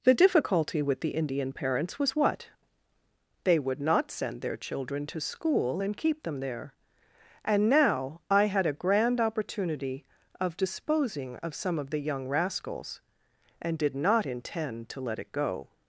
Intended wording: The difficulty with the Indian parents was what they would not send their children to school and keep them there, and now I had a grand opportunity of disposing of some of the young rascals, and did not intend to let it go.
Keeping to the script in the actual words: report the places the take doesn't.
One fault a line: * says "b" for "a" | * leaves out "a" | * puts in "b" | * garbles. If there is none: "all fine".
all fine